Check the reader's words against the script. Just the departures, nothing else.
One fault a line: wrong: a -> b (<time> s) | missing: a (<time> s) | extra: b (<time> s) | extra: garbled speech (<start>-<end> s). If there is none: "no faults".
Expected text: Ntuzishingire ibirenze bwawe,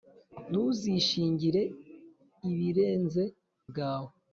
no faults